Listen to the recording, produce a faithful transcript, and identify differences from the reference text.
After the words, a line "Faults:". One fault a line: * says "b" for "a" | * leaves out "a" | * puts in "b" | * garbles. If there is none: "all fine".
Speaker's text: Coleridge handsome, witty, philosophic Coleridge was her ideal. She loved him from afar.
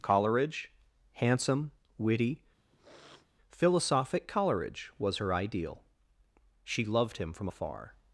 Coleridge handsome, witty, philosophic Coleridge was her ideal. She loved him from afar.
Faults:
all fine